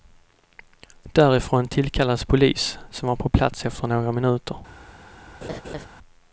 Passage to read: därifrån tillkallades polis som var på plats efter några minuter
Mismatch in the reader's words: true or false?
false